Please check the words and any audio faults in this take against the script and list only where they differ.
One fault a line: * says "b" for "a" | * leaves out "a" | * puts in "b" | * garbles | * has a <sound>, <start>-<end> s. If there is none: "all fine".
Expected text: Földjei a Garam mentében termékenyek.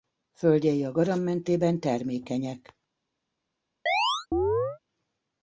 * has a chirp, 3.9-4.8 s